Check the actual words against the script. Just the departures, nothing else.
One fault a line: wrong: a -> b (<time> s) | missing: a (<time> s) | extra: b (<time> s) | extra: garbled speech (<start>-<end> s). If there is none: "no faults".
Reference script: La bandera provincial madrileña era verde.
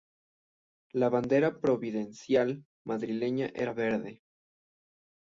no faults